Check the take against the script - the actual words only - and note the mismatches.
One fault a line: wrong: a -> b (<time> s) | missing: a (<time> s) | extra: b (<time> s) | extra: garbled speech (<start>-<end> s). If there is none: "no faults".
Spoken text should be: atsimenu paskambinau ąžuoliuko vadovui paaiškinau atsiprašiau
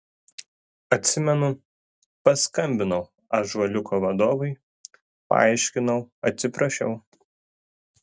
no faults